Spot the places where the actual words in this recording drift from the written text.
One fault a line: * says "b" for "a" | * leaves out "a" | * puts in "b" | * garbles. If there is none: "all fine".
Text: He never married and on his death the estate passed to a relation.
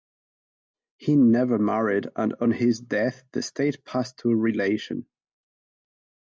all fine